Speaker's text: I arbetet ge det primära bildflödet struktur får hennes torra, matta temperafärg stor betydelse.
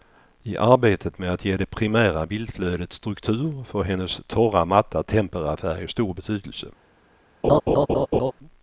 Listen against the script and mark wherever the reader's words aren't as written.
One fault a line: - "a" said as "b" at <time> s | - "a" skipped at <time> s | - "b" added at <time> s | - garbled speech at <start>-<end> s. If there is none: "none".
- "med att" added at 1.2 s